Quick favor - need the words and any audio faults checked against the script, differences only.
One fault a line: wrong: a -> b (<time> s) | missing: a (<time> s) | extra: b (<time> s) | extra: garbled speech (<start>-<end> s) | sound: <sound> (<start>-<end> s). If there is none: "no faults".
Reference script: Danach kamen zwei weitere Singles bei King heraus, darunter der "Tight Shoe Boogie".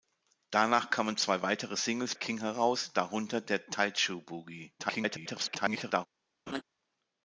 missing: bei (2.1 s)
extra: garbled speech (4.8-6.1 s)
sound: laugh (6.5-6.6 s)